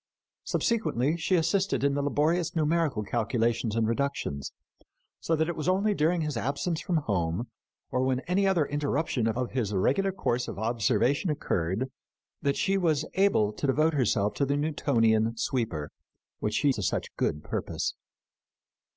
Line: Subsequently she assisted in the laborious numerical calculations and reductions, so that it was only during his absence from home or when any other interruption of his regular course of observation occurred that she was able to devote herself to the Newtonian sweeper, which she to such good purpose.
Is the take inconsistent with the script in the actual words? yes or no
no